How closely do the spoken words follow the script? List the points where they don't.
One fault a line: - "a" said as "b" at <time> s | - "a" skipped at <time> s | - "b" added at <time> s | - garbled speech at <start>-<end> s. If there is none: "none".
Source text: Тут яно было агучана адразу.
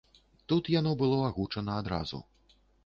none